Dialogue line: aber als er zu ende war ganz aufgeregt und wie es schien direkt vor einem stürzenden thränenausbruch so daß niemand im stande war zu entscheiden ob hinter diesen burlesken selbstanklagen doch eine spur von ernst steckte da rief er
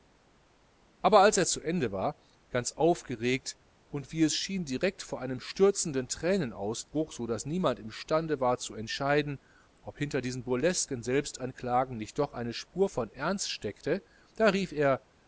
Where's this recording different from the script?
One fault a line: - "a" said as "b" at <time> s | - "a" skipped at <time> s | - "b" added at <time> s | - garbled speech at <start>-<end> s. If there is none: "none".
- "nicht" added at 12.0 s